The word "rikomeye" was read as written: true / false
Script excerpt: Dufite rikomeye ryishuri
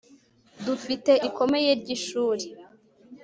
true